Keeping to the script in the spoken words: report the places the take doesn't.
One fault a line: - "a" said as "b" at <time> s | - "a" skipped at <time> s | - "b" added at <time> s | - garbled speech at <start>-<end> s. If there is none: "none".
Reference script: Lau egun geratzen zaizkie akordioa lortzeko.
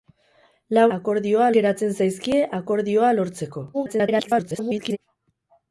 - "egun" said as "akordioa" at 1.0 s
- garbled speech at 3.7-5.0 s